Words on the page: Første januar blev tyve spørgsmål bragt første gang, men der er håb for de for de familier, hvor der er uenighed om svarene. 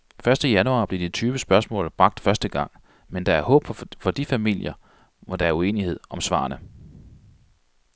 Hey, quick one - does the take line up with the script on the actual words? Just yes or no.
no